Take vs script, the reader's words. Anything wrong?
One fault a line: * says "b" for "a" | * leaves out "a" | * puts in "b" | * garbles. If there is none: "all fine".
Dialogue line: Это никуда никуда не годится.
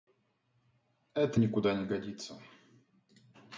* leaves out "никуда"